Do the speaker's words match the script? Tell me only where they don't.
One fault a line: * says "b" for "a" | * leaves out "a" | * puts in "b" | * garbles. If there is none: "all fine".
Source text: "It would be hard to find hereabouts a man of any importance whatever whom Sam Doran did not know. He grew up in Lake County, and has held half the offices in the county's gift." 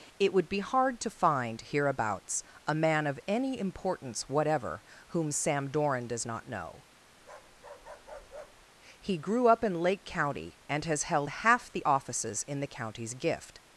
* says "does" for "did"